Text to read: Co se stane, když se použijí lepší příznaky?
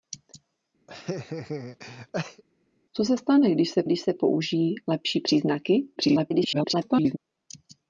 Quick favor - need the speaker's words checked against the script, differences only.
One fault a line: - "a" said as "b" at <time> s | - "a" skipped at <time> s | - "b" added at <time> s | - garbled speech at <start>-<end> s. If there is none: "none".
- "když se" added at 3.8 s
- garbled speech at 6.0-7.2 s